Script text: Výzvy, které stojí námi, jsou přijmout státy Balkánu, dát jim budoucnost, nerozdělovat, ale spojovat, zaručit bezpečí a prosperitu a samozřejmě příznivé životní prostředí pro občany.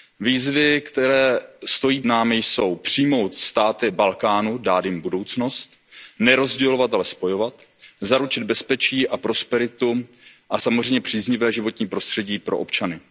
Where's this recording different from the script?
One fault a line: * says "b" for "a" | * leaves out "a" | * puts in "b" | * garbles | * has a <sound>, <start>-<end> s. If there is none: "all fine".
all fine